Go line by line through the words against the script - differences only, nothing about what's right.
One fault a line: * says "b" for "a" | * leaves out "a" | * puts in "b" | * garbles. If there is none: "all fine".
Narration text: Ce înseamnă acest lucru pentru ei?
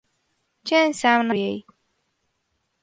* leaves out "acest lucru pentru"